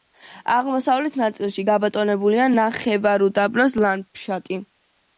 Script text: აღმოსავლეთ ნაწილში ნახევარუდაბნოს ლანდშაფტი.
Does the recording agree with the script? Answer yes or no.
no